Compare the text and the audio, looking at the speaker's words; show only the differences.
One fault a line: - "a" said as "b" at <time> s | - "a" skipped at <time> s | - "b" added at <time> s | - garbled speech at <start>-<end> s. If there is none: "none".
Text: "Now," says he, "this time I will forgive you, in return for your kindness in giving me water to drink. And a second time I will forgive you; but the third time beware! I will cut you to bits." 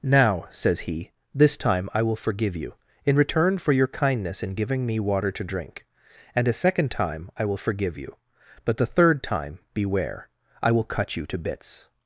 none